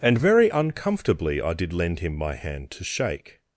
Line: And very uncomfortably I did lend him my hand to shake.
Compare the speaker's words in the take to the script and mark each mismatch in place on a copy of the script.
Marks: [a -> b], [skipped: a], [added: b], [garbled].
And very uncomfortably I did lend him my hand to shake.